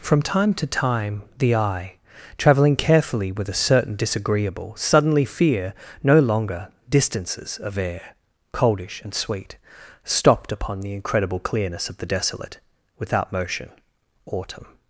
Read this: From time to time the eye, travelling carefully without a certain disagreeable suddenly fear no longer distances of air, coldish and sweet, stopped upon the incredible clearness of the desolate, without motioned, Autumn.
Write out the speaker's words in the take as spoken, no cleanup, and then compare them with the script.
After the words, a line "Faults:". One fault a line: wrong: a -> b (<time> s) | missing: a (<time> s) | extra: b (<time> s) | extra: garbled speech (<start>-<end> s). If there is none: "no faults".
From time to time the eye, travelling carefully with a certain disagreeable suddenly fear no longer distances of air, coldish and sweet, stopped upon the incredible clearness of the desolate, without motion, Autumn.
Faults:
wrong: without -> with (3.3 s)
wrong: motioned -> motion (13.3 s)